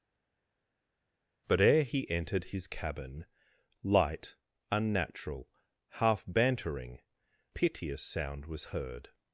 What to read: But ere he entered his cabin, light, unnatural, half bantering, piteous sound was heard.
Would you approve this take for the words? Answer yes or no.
yes